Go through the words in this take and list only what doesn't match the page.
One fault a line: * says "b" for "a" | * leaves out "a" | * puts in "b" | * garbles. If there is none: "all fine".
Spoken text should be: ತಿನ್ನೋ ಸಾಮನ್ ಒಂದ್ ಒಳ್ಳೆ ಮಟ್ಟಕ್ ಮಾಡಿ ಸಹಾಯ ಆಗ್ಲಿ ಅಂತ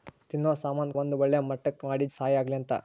all fine